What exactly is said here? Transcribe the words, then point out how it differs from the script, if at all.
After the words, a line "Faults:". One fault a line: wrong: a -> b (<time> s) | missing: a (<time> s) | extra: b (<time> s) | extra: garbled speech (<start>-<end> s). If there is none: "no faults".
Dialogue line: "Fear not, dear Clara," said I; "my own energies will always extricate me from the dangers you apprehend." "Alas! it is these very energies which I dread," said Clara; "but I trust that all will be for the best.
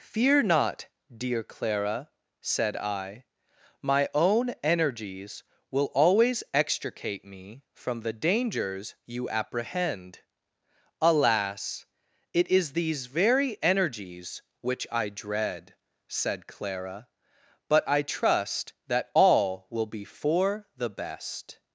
"Fear not, dear Clara," said I; "my own energies will always extricate me from the dangers you apprehend." "Alas! it is these very energies which I dread," said Clara; "but I trust that all will be for the best.
Faults:
no faults